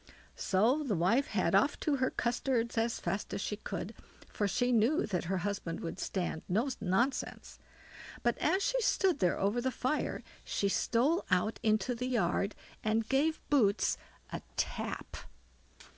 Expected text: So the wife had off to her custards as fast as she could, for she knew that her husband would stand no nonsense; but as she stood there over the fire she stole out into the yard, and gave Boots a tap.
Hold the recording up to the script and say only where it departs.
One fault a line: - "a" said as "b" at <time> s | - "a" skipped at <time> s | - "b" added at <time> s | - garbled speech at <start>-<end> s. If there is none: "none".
none